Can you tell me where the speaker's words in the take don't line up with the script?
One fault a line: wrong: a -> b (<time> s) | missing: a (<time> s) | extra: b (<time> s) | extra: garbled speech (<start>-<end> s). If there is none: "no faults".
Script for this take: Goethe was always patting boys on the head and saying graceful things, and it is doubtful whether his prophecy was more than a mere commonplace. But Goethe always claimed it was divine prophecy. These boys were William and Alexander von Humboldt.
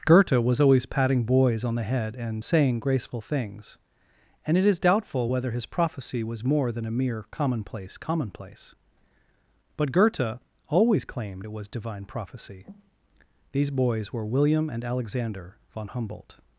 extra: commonplace (8.0 s)